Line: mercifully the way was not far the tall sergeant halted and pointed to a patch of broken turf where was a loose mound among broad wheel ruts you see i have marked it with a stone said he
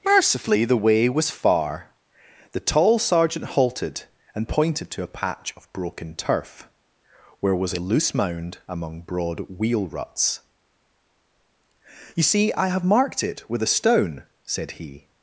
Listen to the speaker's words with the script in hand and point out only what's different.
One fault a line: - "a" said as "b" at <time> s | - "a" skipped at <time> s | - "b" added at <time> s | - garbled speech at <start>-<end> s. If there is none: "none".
- "not" skipped at 1.3 s